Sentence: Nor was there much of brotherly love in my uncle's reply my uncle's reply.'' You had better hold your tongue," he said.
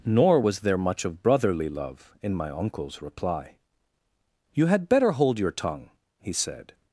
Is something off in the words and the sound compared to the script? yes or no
yes